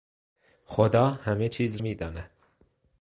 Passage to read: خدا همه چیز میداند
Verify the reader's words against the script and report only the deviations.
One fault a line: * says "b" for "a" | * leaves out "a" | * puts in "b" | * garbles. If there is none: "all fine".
all fine